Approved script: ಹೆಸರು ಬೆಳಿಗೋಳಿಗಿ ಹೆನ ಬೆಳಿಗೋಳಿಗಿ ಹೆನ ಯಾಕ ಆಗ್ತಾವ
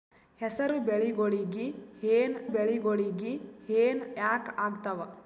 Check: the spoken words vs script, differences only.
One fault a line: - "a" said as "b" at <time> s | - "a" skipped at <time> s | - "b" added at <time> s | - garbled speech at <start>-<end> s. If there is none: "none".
none